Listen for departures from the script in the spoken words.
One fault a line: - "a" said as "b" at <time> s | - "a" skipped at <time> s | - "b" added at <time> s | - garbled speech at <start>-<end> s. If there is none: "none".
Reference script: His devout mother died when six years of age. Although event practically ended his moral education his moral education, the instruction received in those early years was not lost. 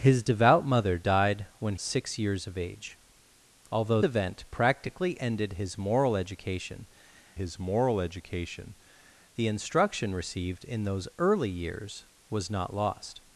none